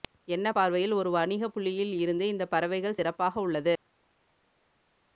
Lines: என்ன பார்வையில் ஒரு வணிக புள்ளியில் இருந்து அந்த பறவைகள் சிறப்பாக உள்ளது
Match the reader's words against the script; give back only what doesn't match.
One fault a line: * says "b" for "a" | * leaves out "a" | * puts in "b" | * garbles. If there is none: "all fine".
* says "இந்த" for "அந்த"